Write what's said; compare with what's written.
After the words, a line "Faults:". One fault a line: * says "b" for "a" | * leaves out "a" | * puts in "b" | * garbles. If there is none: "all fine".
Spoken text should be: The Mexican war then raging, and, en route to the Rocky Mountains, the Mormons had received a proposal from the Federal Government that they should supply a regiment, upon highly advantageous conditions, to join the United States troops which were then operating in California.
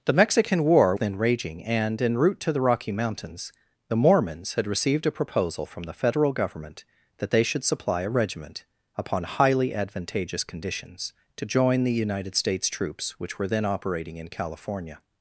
The Mexican war then raging, and, en route to the Rocky Mountains, the Mormons had received a proposal from the Federal Government that they should supply a regiment, upon highly advantageous conditions, to join the United States troops which were then operating in California.
Faults:
all fine